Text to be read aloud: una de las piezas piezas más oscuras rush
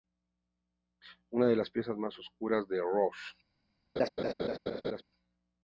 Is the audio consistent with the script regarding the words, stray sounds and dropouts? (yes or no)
no